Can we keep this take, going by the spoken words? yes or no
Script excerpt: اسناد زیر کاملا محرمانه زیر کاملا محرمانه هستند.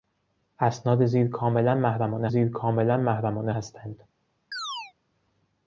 yes